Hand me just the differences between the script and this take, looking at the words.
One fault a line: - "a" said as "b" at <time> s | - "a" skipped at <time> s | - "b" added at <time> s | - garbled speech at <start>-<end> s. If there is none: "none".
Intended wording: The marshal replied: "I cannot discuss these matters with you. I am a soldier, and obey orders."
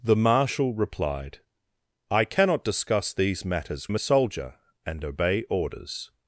- "with you I" skipped at 3.9 s